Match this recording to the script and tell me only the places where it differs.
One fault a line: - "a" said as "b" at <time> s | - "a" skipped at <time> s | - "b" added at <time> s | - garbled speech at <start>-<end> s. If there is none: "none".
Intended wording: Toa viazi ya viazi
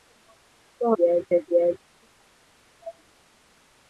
none